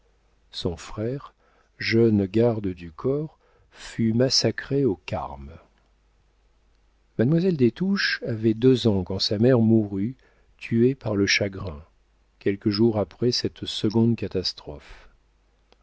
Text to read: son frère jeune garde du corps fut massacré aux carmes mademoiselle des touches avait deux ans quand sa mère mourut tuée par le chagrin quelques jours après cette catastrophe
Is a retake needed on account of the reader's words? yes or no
yes